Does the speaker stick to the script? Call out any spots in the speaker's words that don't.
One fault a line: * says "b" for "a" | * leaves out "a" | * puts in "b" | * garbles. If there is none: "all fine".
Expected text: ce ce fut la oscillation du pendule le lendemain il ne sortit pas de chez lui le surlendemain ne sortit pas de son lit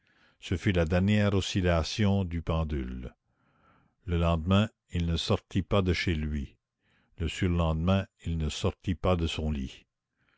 * leaves out "ce"
* puts in "dernière"
* puts in "il"